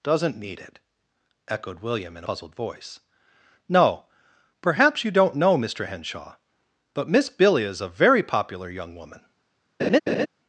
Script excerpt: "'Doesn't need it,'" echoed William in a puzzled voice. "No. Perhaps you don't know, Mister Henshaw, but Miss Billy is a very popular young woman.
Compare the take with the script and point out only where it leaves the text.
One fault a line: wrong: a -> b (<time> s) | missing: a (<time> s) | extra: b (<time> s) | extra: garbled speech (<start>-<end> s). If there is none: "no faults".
missing: a (2.2 s)